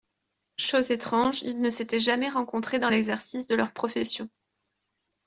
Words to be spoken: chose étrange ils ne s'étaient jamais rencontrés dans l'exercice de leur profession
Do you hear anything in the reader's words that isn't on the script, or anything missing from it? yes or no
no